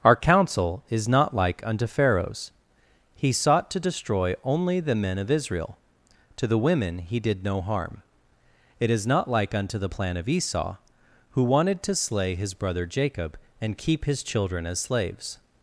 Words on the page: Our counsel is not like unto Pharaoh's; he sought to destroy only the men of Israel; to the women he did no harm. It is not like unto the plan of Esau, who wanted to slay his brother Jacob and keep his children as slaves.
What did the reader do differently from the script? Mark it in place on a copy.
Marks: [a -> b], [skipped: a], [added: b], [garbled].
Our counsel is not like unto Pharaoh's; he sought to destroy only the men of Israel; to the women he did no harm. It is not like unto the plan of Esau, who wanted to slay his brother Jacob and keep his children as slaves.